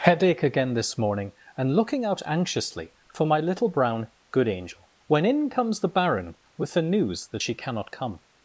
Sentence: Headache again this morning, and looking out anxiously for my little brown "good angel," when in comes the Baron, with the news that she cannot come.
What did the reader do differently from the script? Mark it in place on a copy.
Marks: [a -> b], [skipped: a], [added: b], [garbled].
Headache again this morning, and looking out anxiously for my little brown "good angel," when in comes the Baron, with the news that she cannot come.